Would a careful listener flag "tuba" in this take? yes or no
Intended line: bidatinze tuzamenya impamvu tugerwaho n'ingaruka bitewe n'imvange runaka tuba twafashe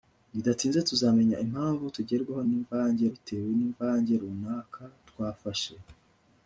yes